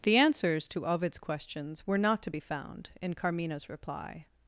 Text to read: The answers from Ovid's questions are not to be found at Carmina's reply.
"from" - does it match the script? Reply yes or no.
no